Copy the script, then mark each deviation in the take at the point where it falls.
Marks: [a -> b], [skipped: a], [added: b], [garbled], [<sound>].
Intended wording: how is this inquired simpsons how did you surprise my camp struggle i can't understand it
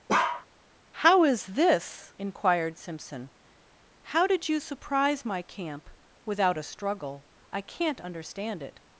[bark] how is this inquired [simpsons -> simpson] how did you surprise my camp [added: without a] struggle i can't understand it